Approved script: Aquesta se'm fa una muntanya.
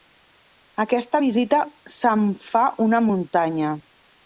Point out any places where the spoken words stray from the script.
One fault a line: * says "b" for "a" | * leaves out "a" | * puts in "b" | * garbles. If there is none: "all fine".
* puts in "visita"